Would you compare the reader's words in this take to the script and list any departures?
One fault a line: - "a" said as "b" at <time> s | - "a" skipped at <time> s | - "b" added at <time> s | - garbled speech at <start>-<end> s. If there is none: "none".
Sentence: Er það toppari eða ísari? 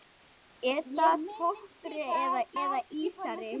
- "eða" added at 2.6 s